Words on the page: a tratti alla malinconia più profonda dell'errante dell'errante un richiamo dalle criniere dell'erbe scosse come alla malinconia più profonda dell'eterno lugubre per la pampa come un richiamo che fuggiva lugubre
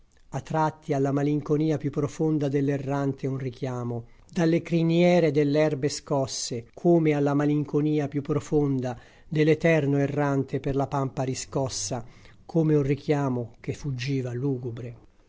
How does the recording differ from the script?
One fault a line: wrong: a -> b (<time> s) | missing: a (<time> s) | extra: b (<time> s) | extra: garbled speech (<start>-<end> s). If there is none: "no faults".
missing: dell'errante (3.3 s)
wrong: lugubre -> errante (10.0 s)
extra: riscossa (11.2 s)